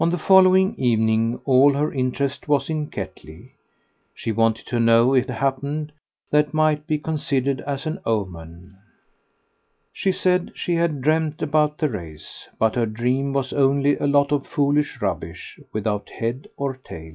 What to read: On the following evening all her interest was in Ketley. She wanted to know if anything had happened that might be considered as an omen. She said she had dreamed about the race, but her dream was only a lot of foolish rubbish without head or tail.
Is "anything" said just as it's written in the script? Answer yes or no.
no